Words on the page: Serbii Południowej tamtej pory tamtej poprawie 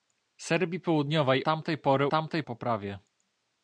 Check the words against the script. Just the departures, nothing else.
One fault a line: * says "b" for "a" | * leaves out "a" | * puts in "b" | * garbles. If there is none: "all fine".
all fine